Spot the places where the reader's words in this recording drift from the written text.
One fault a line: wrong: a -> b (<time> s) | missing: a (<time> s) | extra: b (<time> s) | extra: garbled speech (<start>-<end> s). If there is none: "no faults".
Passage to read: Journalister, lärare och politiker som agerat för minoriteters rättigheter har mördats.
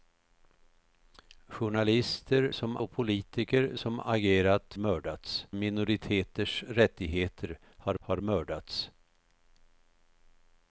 wrong: lärare -> som (2.5 s)
wrong: för -> mördats (4.8 s)
extra: har (8.0 s)